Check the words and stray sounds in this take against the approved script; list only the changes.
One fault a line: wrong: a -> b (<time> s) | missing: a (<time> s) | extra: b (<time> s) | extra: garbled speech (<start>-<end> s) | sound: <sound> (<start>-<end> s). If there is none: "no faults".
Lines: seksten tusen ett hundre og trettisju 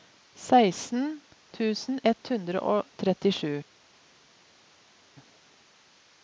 no faults